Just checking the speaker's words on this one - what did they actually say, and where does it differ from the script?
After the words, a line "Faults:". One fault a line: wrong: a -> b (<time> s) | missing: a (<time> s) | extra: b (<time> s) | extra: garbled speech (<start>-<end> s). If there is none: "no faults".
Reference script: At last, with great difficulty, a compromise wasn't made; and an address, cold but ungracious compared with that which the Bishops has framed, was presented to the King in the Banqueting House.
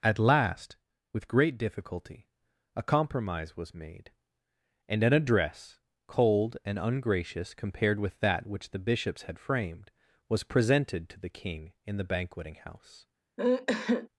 At last, with great difficulty, a compromise was made; and an address, cold and ungracious compared with that which the Bishops had framed, was presented to the King in the Banqueting House.
Faults:
wrong: wasn't -> was (3.6 s)
wrong: but -> and (6.6 s)
wrong: has -> had (9.2 s)